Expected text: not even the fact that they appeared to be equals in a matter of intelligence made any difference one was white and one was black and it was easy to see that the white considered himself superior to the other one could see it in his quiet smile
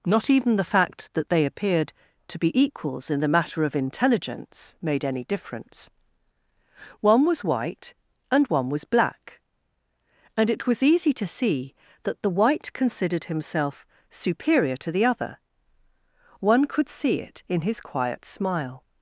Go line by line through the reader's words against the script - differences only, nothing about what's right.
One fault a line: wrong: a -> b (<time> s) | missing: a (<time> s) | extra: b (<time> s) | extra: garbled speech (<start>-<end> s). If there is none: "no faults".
wrong: a -> the (3.2 s)